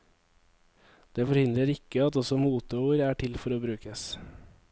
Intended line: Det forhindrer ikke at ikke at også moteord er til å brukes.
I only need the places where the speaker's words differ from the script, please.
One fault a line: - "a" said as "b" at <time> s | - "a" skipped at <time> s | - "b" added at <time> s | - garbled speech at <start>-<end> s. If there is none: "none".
- "ikke at" skipped at 2.2 s
- "for" added at 3.4 s